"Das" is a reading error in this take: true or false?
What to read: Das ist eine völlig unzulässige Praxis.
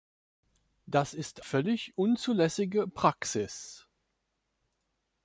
false